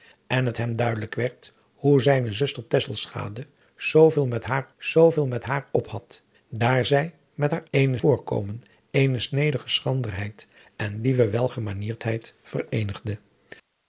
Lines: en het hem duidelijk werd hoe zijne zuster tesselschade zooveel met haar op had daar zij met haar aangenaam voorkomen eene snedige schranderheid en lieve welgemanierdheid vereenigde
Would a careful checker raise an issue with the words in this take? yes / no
yes